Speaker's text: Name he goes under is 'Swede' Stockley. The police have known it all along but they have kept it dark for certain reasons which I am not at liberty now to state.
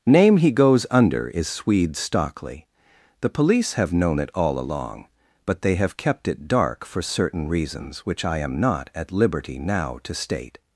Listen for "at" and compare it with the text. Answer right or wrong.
right